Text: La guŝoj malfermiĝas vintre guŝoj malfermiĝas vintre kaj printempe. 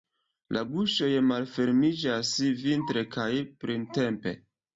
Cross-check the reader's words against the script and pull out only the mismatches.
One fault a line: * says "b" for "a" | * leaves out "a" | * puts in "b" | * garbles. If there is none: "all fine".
* leaves out "guŝoj malfermiĝas vintre"